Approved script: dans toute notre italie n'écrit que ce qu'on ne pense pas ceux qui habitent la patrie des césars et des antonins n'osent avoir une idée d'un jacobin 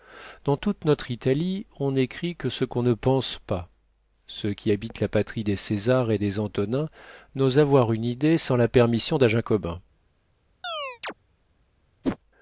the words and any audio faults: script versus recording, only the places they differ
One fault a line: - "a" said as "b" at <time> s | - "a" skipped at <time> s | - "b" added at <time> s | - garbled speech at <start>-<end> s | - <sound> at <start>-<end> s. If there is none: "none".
- "on" added at 1.8 s
- "sans la permission" added at 8.4 s
- chirp at 10.6-11.1 s
- whoosh at 12.0-12.2 s